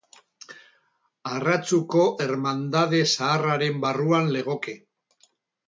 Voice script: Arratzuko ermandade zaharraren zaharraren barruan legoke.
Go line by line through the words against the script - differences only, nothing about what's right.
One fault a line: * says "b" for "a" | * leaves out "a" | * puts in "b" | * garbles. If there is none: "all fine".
* leaves out "zaharraren"